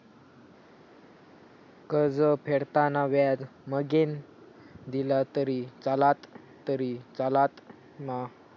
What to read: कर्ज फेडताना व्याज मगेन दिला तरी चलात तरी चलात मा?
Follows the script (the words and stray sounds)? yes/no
yes